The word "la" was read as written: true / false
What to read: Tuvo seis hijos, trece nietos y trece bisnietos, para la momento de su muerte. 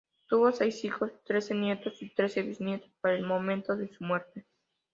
false